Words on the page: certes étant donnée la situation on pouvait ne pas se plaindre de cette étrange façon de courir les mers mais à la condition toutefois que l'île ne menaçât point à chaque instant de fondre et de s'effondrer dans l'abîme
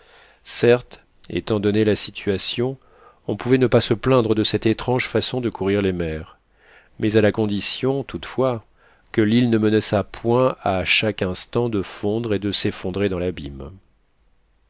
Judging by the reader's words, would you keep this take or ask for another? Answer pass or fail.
pass